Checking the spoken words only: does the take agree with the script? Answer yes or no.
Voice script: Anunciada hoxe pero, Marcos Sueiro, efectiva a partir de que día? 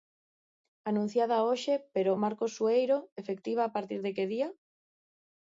yes